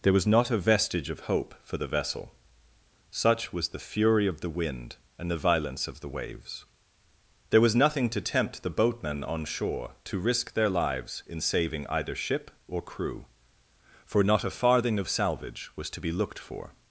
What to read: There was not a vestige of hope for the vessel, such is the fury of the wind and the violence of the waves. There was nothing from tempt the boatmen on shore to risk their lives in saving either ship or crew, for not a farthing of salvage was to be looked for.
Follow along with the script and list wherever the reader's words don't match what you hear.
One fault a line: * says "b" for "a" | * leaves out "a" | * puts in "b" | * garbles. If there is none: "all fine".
* says "was" for "is"
* says "to" for "from"